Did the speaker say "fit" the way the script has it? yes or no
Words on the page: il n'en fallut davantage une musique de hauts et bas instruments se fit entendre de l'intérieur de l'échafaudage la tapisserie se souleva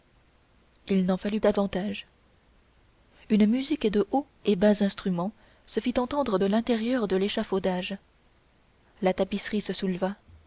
yes